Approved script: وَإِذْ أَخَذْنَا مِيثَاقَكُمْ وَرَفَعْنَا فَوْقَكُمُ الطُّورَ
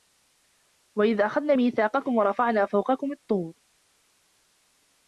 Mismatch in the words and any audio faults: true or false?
false